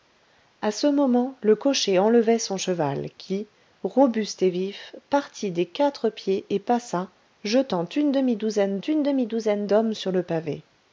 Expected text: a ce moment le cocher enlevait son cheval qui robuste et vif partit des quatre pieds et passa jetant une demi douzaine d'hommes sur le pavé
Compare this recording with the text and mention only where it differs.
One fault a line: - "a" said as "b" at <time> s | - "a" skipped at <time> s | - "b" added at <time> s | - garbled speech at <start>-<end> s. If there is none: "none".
- "une demi douzaine" added at 8.8 s